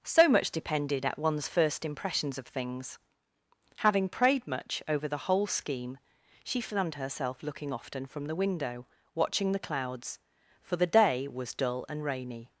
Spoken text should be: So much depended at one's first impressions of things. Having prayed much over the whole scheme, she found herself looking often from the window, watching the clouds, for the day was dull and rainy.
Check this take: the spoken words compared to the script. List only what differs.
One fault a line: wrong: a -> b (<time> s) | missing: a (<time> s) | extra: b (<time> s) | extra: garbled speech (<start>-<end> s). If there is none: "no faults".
no faults